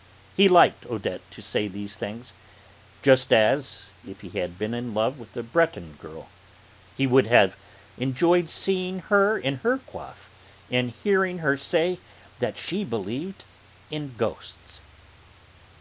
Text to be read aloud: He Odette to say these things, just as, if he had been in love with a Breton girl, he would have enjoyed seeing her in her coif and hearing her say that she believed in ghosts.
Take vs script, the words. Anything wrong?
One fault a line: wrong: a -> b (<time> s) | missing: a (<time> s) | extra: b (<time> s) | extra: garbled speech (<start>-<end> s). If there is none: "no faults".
extra: liked (0.5 s)